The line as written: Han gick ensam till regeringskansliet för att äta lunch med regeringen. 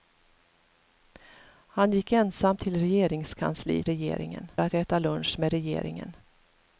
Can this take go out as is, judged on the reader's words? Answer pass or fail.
fail